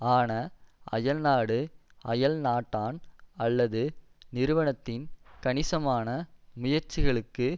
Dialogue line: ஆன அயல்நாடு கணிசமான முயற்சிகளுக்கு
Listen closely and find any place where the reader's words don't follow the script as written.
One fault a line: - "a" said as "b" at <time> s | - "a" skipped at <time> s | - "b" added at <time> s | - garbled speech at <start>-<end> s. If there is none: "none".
- "அயல்நாட்டான் அல்லது நிறுவனத்தின்" added at 2.0 s